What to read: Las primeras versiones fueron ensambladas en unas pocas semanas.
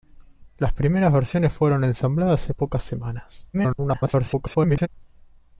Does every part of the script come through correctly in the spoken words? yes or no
no